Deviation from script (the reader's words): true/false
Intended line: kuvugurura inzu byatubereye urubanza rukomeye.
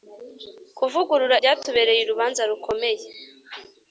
true